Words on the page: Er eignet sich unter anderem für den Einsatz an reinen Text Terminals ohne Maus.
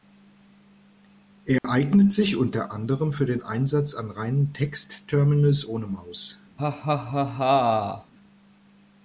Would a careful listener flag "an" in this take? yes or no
no